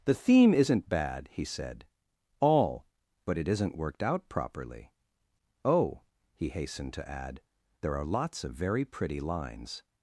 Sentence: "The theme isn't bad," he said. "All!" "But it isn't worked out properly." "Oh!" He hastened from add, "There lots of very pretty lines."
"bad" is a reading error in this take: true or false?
false